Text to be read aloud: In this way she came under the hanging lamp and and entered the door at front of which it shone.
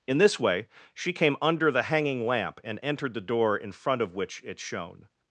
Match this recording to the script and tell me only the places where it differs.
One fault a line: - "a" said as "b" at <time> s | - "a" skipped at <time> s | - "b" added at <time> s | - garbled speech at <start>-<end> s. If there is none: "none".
- "and" skipped at 2.8 s
- "at" said as "in" at 3.5 s